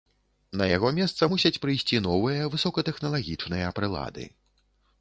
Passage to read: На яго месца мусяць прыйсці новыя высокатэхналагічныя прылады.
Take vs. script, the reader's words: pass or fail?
pass